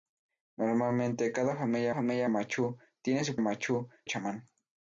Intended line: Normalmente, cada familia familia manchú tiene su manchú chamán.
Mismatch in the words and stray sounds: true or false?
false